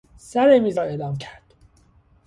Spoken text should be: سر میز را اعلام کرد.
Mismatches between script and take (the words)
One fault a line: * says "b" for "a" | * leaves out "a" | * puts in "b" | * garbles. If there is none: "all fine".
all fine